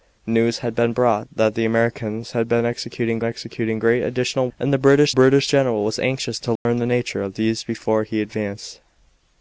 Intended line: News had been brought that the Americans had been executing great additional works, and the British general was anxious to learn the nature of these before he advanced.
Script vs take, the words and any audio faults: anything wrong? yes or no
yes